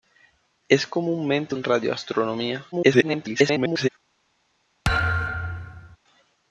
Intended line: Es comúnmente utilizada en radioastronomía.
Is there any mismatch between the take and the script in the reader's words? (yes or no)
yes